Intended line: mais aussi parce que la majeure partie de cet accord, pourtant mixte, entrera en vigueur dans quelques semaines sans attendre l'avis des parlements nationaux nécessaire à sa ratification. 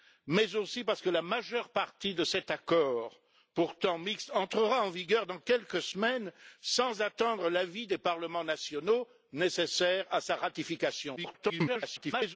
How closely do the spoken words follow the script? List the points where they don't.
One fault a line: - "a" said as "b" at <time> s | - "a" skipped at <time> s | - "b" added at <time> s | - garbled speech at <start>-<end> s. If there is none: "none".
- garbled speech at 11.2-12.4 s